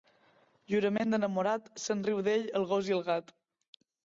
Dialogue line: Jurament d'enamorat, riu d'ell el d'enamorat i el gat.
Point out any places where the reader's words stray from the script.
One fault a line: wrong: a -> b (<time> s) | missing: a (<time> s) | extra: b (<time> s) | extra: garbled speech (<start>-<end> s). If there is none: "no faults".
extra: se'n (1.8 s)
wrong: d'enamorat -> gos (2.7 s)